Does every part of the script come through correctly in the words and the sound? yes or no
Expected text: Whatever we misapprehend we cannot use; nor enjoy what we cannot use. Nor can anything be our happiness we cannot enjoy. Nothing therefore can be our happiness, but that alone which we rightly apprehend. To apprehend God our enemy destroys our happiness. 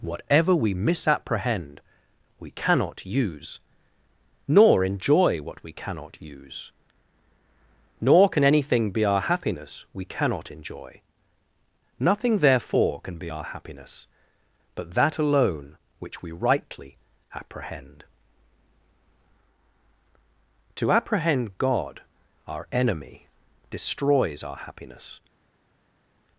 yes